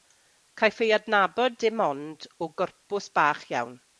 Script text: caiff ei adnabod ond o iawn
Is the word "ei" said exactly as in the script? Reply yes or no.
yes